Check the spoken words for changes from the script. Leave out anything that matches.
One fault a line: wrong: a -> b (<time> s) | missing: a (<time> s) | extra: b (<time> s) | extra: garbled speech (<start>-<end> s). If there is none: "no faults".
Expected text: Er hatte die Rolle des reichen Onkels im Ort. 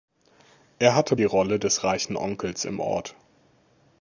no faults